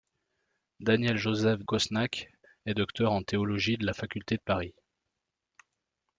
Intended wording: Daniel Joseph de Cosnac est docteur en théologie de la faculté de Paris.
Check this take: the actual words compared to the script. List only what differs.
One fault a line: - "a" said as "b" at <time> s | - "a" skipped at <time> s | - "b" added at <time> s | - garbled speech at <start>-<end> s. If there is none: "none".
- "de" skipped at 1.6 s